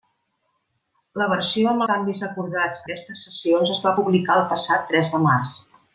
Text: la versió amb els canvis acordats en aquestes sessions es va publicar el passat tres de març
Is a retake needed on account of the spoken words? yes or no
yes